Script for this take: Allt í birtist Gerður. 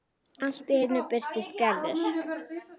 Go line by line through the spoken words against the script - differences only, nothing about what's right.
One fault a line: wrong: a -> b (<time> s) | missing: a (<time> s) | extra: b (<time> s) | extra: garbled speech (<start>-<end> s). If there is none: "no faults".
extra: einu (0.8 s)